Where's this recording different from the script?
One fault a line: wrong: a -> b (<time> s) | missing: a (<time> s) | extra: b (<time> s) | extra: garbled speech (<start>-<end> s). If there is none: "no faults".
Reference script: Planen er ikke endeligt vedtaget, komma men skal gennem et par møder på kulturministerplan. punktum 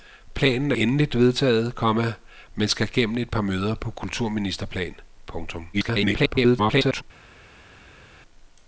missing: ikke (0.8 s)
extra: garbled speech (5.7-7.0 s)